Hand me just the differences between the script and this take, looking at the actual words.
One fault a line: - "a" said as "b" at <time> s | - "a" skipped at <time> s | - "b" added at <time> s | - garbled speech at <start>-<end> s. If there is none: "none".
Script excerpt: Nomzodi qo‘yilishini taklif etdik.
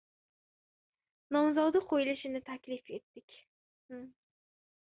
none